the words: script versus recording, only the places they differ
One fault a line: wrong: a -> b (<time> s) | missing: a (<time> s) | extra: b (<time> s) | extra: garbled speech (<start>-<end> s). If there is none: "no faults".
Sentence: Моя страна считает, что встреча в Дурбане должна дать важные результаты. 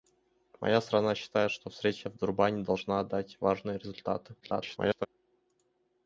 extra: garbled speech (4.4-5.1 s)